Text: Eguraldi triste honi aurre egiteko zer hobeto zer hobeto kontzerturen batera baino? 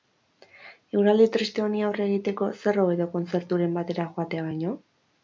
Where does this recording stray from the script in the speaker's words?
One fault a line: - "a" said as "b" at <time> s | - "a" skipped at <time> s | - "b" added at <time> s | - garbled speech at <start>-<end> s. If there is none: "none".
- "zer hobeto" skipped at 3.1 s
- "joatea" added at 4.2 s